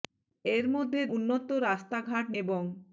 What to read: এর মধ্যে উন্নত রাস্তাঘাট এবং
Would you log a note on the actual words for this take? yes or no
no